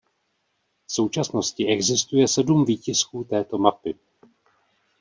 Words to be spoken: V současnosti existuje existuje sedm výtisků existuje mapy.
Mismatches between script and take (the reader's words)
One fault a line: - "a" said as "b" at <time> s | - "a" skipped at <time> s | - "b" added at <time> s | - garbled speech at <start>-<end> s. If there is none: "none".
- "existuje" skipped at 2.3 s
- "existuje" said as "této" at 3.2 s